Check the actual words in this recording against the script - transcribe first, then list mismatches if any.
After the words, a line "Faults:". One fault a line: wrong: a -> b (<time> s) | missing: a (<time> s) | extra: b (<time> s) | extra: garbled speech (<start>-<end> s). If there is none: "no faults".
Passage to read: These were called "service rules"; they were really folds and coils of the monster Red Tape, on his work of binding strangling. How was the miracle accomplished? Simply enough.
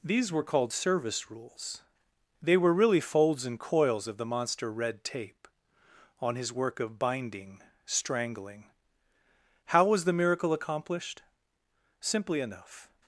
These were called "service rules"; they were really folds and coils of the monster Red Tape, on his work of binding strangling. How was the miracle accomplished? Simply enough.
Faults:
no faults